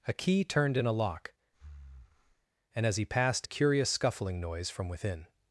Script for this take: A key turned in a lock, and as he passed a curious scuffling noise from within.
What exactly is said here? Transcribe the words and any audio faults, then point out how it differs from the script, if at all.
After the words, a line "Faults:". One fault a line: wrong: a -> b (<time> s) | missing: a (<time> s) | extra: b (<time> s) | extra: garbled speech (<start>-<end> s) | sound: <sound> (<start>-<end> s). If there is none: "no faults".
A key turned in a lock, and as he passed a curious scuffling noise from within.
Faults:
sound: breath (1.5-2.5 s)